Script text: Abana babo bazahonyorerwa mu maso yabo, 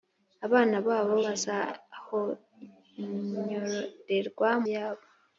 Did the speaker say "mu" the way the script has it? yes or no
no